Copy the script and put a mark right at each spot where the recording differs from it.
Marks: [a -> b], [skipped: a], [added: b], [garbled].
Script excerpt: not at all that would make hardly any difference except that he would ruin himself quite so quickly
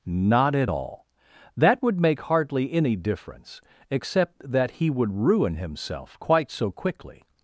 not at all that would make hardly any difference except that he would ruin himself quite so quickly